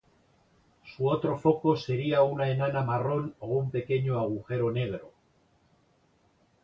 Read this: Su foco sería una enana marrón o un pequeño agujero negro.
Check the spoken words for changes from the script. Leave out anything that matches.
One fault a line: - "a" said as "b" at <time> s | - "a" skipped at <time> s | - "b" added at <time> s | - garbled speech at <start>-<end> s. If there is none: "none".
- "otro" added at 1.1 s